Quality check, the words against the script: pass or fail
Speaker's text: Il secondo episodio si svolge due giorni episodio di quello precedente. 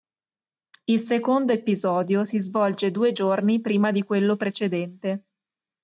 fail